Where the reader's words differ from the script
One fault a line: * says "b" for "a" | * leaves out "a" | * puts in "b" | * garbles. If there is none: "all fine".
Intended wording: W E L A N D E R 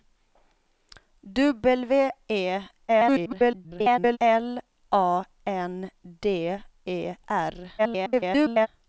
* garbles
* garbles